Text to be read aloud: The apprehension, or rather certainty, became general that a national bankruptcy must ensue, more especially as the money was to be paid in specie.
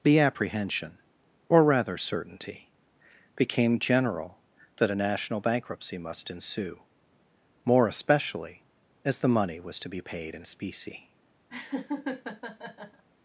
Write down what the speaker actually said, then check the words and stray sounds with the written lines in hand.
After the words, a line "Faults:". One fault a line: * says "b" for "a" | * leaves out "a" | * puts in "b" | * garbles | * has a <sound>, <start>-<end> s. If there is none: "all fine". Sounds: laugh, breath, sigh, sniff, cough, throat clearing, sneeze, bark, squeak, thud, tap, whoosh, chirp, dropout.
The apprehension, or rather certainty, became general that a national bankruptcy must ensue, more especially as the money was to be paid in specie.
Faults:
* has a laugh, 11.5-13.0 s